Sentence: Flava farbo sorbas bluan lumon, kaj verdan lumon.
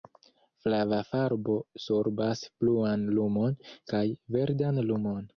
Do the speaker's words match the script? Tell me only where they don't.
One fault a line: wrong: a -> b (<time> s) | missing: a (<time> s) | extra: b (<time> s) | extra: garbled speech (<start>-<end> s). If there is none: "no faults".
no faults